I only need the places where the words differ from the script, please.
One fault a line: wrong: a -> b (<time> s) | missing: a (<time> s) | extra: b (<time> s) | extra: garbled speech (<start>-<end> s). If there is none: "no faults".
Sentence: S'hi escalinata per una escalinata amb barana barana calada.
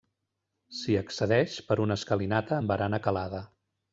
wrong: escalinata -> accedeix (1.0 s)
missing: barana (3.0 s)